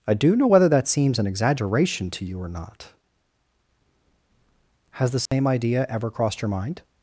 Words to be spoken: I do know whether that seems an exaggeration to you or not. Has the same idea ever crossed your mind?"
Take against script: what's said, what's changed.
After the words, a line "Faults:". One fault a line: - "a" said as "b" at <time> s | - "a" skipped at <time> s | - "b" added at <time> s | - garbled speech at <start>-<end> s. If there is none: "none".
I do know whether that seems an exaggeration to you or not. Has the same idea ever crossed your mind?"
Faults:
none